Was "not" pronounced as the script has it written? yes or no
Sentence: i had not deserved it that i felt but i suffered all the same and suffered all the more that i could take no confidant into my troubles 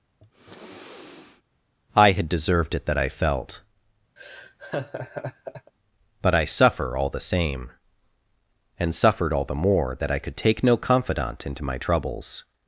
no